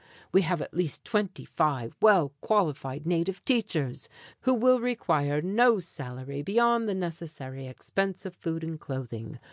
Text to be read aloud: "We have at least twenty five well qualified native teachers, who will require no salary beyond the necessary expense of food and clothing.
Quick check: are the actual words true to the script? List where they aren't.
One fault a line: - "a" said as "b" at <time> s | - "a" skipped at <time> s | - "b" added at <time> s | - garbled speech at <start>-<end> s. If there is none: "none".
none